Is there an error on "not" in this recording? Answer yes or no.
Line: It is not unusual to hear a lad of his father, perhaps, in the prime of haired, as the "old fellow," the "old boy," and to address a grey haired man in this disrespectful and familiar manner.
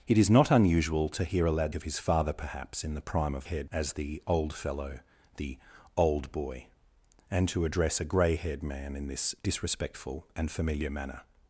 no